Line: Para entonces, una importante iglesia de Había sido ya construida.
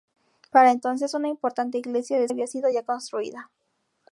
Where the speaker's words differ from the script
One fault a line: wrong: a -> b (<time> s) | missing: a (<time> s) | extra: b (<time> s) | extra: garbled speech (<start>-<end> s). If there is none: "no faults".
no faults